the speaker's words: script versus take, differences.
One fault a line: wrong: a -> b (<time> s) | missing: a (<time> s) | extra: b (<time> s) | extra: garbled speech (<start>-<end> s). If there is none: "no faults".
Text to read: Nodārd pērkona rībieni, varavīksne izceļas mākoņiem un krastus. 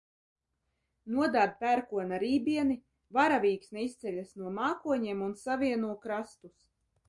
extra: no (4.4 s)
extra: savieno (5.5 s)